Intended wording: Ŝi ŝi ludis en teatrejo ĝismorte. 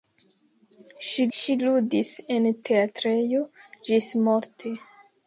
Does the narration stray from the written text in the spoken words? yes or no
no